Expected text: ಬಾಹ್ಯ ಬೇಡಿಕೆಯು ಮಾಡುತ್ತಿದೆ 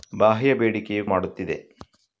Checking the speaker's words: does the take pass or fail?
pass